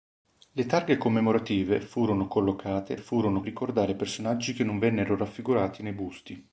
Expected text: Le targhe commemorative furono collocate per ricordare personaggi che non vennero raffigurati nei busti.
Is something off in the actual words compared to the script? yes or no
yes